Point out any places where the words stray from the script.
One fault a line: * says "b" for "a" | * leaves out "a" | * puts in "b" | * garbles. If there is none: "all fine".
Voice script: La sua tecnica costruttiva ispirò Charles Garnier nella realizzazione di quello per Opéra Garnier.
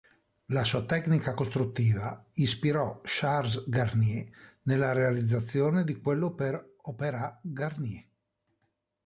all fine